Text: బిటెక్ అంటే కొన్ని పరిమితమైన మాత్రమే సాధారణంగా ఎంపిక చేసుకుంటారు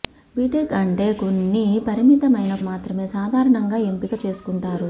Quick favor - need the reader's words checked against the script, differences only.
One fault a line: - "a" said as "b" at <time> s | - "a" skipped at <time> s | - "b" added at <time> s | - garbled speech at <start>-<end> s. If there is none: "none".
none